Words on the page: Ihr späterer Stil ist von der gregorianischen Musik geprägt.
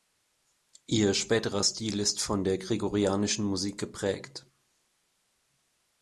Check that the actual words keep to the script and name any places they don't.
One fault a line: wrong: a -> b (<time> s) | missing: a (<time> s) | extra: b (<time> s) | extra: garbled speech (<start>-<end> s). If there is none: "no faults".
no faults